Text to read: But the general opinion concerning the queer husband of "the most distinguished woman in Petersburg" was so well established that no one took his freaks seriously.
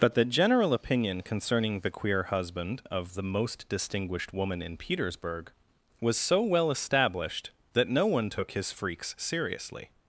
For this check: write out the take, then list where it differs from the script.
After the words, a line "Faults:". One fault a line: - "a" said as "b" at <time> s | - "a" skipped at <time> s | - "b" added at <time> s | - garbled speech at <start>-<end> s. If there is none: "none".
But the general opinion concerning the queer husband of "the most distinguished woman in Petersburg" was so well established that no one took his freaks seriously.
Faults:
none